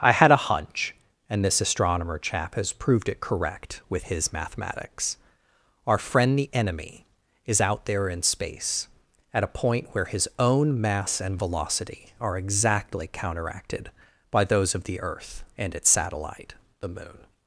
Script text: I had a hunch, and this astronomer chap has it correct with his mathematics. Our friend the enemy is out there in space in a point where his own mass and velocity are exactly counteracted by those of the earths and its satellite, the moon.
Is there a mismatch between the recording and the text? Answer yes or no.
yes